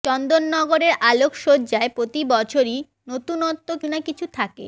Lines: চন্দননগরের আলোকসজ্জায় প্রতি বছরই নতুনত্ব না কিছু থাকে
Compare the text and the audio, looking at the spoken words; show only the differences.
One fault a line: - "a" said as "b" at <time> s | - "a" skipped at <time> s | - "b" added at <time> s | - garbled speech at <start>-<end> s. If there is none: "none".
none